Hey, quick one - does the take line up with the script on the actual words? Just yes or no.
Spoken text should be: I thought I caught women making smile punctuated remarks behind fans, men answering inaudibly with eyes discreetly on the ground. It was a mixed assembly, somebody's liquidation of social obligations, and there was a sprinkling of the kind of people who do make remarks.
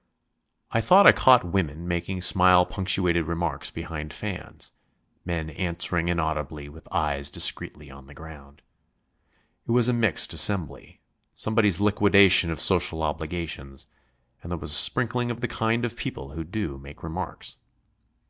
yes